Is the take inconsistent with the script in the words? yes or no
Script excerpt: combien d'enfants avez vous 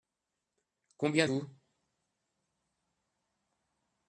yes